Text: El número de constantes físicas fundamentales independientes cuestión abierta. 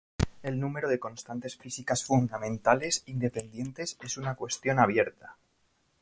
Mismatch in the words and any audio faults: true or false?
true